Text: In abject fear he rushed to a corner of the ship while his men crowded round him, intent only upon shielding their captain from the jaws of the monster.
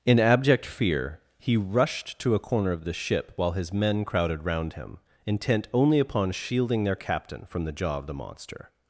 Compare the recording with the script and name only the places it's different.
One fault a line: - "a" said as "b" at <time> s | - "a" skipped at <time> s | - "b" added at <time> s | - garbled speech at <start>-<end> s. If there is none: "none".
- "jaws" said as "jaw" at 7.7 s